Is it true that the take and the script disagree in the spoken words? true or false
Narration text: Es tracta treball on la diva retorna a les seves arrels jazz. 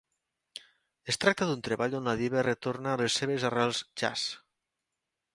true